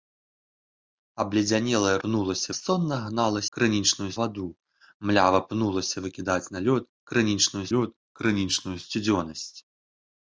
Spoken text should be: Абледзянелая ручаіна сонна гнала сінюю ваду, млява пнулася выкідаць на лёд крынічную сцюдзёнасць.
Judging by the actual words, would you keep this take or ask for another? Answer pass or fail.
fail